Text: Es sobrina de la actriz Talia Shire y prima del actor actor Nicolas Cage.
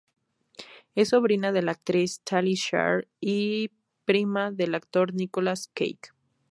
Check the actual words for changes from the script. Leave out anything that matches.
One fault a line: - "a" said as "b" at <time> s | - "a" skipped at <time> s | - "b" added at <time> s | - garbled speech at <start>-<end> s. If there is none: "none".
- "actor" skipped at 5.1 s